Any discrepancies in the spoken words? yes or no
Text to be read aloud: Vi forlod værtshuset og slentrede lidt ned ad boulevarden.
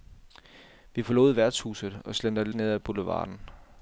yes